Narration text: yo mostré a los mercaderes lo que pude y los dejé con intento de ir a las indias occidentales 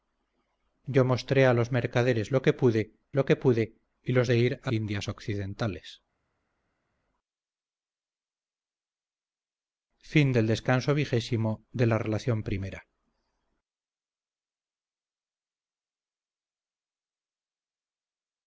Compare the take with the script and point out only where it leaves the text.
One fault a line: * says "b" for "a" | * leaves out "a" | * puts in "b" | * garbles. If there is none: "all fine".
* says "lo que pude y los" for "y los dejé con intento"
* leaves out "las"